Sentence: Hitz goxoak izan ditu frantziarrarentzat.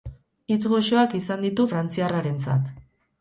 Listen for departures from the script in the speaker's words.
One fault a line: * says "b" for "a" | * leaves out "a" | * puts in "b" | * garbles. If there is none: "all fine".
all fine